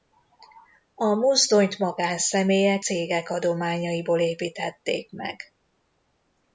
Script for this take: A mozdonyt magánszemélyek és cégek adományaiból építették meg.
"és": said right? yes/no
no